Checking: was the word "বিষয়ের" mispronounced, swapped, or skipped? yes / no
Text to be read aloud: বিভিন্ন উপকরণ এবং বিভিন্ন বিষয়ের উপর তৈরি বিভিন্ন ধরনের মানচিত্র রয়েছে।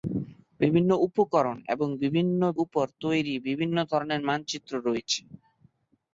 yes